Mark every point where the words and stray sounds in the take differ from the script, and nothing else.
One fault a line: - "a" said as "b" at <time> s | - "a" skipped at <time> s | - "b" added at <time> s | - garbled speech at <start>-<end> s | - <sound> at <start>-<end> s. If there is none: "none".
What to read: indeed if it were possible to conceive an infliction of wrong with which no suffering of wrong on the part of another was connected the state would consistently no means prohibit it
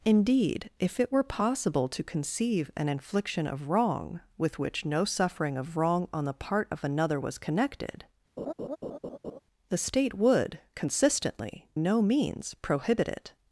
- laugh at 8.4-9.4 s